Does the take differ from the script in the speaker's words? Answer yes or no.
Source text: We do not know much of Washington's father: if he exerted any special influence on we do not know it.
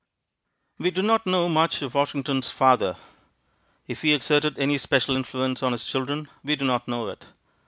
yes